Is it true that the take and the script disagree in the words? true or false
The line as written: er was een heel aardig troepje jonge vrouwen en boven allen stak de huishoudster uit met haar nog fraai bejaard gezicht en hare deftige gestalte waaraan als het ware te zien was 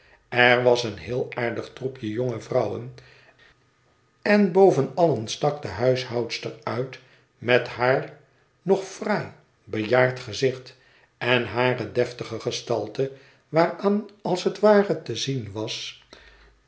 false